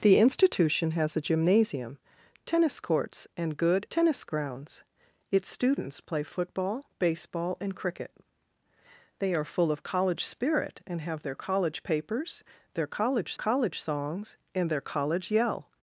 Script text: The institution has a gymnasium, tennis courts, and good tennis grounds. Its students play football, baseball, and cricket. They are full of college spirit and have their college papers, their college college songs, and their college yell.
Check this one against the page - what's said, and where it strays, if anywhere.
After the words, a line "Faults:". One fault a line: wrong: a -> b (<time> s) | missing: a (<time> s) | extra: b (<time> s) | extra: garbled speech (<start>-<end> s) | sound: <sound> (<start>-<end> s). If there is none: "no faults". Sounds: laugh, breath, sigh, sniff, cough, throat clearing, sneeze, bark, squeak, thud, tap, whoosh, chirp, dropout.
The institution has a gymnasium, tennis courts, and good tennis grounds. Its students play football, baseball, and cricket. They are full of college spirit and have their college papers, their college college songs, and their college yell.
Faults:
no faults